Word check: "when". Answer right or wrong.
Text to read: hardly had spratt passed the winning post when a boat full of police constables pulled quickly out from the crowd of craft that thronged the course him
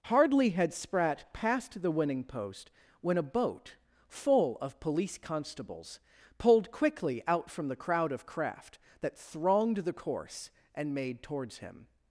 right